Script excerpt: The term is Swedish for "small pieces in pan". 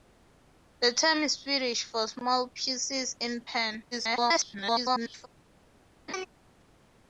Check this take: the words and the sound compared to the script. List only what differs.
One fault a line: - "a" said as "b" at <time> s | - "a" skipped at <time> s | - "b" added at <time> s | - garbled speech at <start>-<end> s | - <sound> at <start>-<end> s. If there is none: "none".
- garbled speech at 3.9-5.3 s
- laugh at 6.1-6.3 s